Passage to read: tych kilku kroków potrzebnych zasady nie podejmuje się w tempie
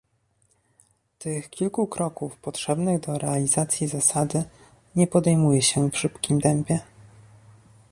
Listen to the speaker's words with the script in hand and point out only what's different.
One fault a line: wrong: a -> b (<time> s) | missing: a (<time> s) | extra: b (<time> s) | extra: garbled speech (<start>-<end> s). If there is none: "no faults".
extra: do realizacji (3.0 s)
extra: szybkim (6.0 s)